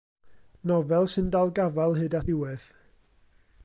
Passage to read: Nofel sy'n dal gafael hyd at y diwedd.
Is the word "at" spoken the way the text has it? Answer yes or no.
no